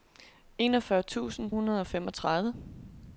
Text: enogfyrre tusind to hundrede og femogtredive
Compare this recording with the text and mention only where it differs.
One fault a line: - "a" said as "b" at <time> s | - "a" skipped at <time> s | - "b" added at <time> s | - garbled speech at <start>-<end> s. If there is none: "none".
- "to" skipped at 1.5 s